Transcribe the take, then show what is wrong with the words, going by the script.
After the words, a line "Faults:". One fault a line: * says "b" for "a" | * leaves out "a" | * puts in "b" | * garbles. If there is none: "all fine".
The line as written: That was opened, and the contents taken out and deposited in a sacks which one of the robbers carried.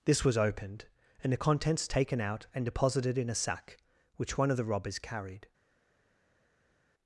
This was opened, and the contents taken out and deposited in a sack which one of the robbers carried.
Faults:
* says "This" for "That"
* says "sack" for "sacks"